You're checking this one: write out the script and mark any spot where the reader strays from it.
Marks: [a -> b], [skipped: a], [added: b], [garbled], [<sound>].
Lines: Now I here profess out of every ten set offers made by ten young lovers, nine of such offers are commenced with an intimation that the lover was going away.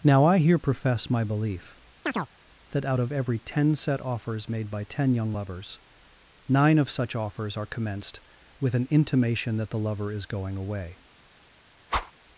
Now I here profess [added: my belief that] [chirp] out of every ten set offers made by ten young lovers, nine of such offers are commenced with an intimation that the lover [was -> is] going away. [whoosh]